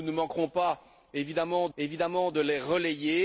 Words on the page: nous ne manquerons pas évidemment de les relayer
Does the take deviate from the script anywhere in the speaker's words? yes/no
yes